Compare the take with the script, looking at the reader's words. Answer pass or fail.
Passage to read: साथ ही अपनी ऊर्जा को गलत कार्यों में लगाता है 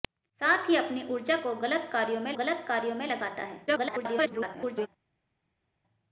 fail